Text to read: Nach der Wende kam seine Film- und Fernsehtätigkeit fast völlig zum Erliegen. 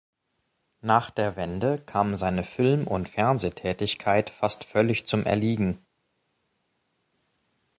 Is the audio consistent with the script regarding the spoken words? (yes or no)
yes